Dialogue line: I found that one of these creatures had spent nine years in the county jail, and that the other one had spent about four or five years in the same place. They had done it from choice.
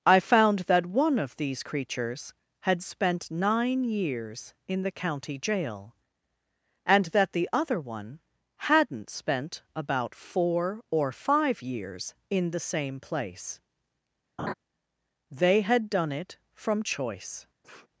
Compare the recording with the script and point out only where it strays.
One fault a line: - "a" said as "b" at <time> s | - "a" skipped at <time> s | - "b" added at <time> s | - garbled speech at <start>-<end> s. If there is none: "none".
- "had" said as "hadn't" at 8.6 s